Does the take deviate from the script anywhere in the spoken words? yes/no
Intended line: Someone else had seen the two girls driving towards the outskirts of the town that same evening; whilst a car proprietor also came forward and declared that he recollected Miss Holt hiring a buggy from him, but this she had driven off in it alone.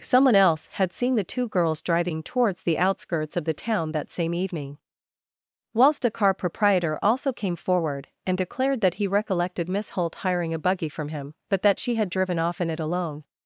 yes